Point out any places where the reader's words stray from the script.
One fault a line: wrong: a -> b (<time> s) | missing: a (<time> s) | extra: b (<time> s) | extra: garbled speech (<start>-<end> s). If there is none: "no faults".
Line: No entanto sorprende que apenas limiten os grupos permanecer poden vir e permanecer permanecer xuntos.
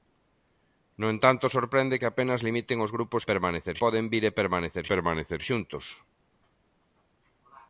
no faults